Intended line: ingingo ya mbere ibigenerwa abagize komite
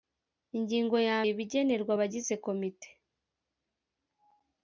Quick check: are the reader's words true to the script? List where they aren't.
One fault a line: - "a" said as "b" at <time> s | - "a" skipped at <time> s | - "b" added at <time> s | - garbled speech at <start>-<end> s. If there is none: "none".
- "mbere" skipped at 1.2 s